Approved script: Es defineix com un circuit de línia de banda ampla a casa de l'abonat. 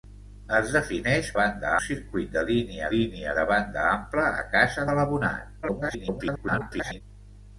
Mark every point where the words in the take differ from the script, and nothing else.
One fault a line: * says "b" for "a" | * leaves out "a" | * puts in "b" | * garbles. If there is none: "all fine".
* says "banda" for "com"
* puts in "línia"
* garbles